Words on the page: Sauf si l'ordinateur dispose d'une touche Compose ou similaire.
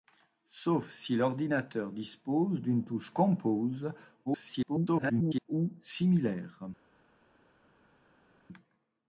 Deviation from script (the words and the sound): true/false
true